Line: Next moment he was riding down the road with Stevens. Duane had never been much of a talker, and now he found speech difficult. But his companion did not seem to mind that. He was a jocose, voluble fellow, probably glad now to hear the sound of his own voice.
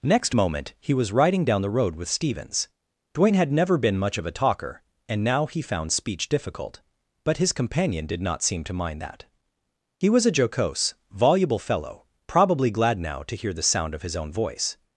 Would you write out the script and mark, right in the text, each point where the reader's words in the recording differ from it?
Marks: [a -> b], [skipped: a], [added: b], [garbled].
Next moment he was riding down the road with Stevens. Duane had never been much of a talker, and now he found speech difficult. But his companion did not seem to mind that. He was a jocose, voluble fellow, probably glad now to hear the sound of his own voice.